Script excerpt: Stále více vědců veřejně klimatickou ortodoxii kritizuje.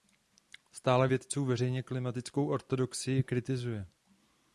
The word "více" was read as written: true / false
false